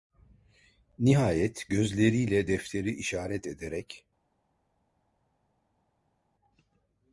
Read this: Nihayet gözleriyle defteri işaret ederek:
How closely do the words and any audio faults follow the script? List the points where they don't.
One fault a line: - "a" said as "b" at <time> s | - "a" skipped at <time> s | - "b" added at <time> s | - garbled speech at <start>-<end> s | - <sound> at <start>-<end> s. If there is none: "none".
none